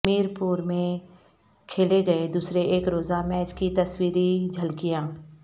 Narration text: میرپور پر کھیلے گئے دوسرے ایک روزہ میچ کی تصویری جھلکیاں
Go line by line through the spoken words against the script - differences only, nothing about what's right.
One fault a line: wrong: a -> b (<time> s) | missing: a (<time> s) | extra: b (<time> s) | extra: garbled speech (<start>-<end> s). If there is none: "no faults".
wrong: پر -> میں (0.6 s)